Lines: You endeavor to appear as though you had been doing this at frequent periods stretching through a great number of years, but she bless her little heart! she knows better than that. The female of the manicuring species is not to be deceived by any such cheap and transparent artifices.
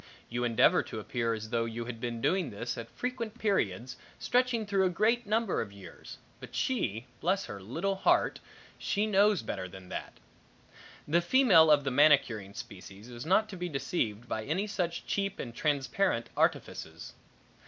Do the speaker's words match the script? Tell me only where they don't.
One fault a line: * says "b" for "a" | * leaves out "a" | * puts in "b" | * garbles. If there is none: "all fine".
all fine